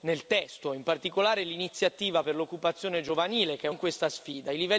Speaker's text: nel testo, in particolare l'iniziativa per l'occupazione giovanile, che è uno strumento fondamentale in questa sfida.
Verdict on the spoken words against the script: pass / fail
fail